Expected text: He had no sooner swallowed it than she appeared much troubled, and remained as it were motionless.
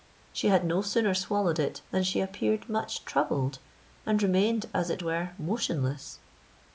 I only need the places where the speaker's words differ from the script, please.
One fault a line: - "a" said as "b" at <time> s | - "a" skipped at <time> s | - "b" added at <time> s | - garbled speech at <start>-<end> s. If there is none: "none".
- "He" said as "She" at 0.3 s